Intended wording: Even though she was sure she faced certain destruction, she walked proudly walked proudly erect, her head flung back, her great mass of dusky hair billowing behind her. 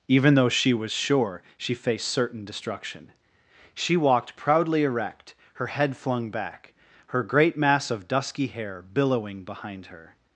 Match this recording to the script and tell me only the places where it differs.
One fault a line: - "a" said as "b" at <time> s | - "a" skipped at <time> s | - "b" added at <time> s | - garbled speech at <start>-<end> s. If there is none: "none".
- "walked proudly" skipped at 4.8 s